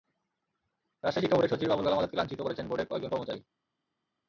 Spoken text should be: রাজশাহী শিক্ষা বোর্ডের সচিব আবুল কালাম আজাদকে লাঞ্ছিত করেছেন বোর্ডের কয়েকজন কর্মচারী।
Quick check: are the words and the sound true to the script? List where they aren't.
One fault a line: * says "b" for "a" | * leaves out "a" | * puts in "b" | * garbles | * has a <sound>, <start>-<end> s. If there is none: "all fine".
all fine